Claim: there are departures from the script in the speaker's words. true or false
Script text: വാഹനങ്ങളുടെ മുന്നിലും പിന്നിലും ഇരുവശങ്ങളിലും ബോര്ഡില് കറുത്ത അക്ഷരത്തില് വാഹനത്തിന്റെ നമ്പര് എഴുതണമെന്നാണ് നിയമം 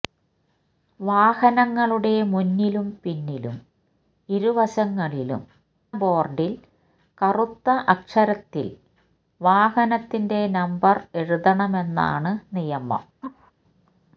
false